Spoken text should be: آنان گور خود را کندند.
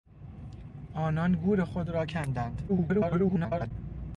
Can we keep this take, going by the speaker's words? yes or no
no